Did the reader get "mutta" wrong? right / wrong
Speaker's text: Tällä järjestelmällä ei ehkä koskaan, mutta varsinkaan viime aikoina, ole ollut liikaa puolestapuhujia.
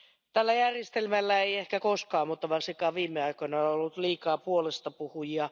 right